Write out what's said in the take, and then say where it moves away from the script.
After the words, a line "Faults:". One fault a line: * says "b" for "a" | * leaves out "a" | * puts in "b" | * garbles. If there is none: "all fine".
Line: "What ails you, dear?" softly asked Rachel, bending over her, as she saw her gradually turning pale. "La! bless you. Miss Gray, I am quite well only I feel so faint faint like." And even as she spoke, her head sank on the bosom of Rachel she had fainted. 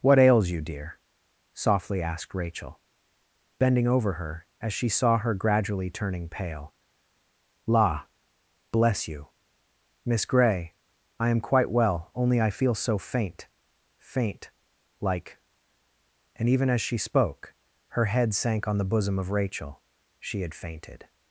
"What ails you, dear?" softly asked Rachel, bending over her, as she saw her gradually turning pale. "La! bless you. Miss Gray, I am quite well only I feel so faint faint like." And even as she spoke, her head sank on the bosom of Rachel she had fainted.
Faults:
all fine